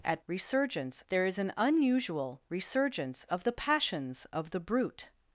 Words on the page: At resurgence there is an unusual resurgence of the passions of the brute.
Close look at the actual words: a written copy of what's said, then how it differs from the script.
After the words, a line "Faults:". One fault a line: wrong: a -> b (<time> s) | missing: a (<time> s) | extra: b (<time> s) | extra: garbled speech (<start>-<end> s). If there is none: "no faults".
At resurgence there is an unusual resurgence of the passions of the brute.
Faults:
no faults